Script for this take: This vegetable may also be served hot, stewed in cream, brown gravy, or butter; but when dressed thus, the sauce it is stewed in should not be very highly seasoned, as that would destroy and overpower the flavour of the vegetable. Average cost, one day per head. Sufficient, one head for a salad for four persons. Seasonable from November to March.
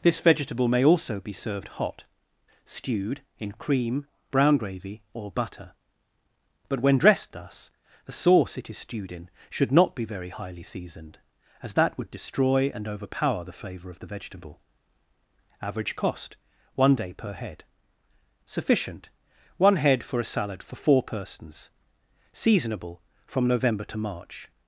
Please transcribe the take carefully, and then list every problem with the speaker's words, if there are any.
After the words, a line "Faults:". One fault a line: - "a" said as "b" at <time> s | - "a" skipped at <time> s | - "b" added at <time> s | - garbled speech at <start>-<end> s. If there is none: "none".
This vegetable may also be served hot, stewed in cream, brown gravy, or butter; but when dressed thus, the sauce it is stewed in should not be very highly seasoned, as that would destroy and overpower the flavour of the vegetable. Average cost, one day per head. Sufficient, one head for a salad for four persons. Seasonable from November to March.
Faults:
none